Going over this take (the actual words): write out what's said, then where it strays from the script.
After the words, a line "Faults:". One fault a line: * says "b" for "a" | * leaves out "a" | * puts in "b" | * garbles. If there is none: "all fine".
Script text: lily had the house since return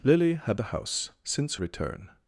lily had the house since return
Faults:
all fine